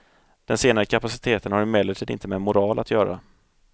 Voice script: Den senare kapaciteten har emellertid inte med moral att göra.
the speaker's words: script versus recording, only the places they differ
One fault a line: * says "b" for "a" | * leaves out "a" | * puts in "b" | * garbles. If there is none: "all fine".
all fine